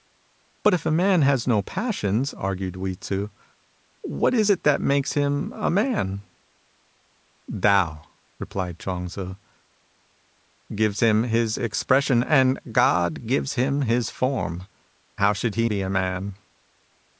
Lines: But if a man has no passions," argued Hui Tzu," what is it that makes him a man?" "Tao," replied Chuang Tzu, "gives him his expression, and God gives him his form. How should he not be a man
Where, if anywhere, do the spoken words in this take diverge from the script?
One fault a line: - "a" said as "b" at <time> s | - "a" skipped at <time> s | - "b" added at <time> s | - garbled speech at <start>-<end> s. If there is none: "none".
- "not" skipped at 15.7 s